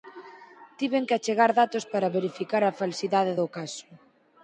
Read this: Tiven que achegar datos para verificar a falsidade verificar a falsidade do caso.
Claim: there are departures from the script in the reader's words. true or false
true